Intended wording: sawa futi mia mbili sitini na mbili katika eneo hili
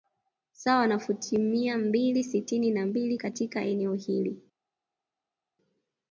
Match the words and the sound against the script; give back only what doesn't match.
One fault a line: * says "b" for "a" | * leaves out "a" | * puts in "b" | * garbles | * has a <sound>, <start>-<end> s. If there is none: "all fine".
* puts in "na"